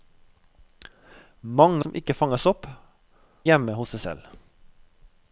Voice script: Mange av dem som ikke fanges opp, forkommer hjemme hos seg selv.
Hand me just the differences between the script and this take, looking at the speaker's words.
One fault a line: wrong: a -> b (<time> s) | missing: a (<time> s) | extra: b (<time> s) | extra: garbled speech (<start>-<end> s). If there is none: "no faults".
missing: av dem (1.9 s)
missing: forkommer (2.7 s)